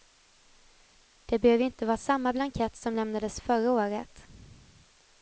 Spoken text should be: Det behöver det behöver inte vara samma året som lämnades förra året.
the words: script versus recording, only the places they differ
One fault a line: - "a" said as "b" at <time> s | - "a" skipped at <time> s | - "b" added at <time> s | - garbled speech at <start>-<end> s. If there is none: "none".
- "det behöver" skipped at 1.6 s
- "året" said as "blankett" at 2.3 s